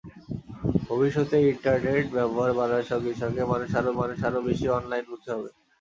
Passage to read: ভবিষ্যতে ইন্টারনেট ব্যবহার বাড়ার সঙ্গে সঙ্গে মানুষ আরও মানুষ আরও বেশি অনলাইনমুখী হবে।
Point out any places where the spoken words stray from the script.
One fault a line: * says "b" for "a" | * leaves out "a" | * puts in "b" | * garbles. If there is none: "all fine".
all fine